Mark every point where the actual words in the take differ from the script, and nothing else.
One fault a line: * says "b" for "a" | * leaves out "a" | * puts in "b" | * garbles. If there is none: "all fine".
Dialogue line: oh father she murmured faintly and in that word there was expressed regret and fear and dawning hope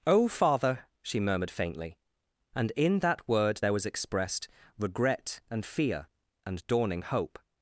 all fine